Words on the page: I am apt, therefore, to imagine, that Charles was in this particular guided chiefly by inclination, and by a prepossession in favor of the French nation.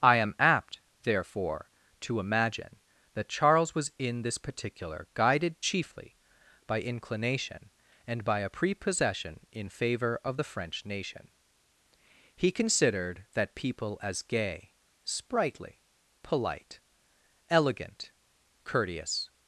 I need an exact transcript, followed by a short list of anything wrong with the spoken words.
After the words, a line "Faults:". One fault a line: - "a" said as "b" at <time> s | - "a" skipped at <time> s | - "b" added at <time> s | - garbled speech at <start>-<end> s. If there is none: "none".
I am apt, therefore, to imagine, that Charles was in this particular guided chiefly by inclination, and by a prepossession in favor of the French nation. He considered that people as gay, sprightly, polite, elegant, courteous
Faults:
- "He considered that people as gay sprightly polite elegant courteous" added at 12.3 s